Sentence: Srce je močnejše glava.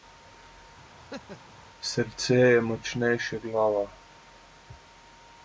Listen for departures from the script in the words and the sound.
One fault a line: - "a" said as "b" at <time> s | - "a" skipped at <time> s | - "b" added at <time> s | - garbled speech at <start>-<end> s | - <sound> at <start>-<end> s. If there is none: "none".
- laugh at 1.0-1.5 s